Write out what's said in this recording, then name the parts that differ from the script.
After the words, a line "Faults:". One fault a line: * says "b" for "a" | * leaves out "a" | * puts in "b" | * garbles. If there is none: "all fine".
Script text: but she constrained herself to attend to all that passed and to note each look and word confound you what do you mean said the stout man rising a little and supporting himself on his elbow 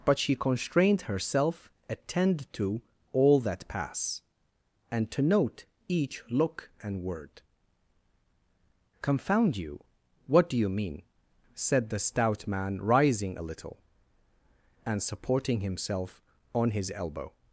but she constrained herself attend to all that pass and to note each look and word confound you what do you mean said the stout man rising a little and supporting himself on his elbow
Faults:
* leaves out "to"
* says "pass" for "passed"